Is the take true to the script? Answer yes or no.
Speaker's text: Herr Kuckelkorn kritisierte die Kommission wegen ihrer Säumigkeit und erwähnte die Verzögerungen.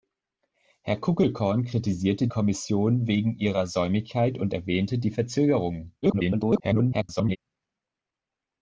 no